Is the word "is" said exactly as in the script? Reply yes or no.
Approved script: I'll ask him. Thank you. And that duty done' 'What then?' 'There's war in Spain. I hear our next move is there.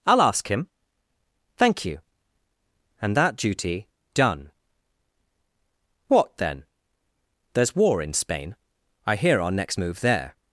no